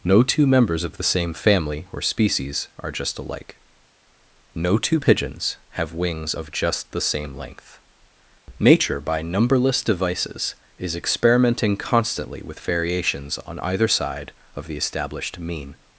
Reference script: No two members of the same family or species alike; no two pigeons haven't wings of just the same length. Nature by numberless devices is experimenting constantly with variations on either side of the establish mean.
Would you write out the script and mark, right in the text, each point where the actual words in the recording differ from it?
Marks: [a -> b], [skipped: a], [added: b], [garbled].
No two members of the same family or species [added: are just] alike; no two pigeons [haven't -> have] wings of just the same length. Nature by numberless devices is experimenting constantly with variations on either side of the [establish -> established] mean.